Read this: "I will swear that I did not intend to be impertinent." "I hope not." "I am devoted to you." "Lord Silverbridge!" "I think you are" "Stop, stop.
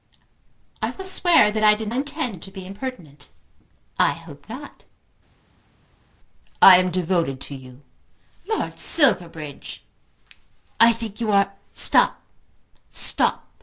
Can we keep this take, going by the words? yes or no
no